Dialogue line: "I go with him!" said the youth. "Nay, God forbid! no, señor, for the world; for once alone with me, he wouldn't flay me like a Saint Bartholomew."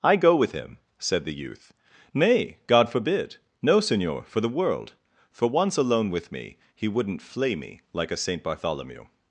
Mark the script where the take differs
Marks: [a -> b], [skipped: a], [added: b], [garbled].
"I go with him!" said the youth. "Nay, God forbid! no, señor, for the world; for once alone with me, he wouldn't flay me like a Saint Bartholomew."